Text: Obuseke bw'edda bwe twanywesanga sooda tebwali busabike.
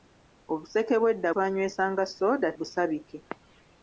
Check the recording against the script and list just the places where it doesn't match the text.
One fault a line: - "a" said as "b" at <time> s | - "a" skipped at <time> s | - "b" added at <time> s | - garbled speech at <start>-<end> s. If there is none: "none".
- "bwe" skipped at 1.3 s
- "tebwali" skipped at 2.5 s